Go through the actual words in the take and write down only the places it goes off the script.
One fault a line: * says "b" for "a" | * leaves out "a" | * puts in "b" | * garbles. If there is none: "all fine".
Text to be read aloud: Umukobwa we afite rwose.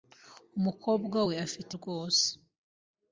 all fine